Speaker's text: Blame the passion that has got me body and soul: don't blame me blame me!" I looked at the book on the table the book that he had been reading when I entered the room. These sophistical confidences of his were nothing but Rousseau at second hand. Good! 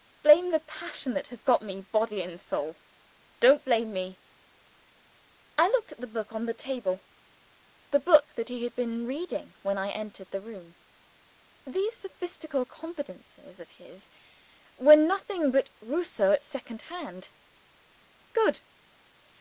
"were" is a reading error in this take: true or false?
false